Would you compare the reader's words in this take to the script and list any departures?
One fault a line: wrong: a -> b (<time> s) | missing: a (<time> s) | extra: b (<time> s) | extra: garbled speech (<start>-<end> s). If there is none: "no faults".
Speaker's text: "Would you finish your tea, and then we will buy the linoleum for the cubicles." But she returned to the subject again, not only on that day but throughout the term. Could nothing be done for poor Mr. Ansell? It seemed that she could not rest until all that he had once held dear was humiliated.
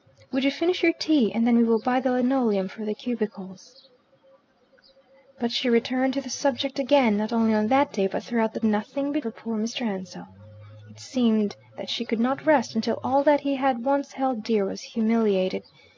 missing: term Could (8.6 s)
missing: done (9.2 s)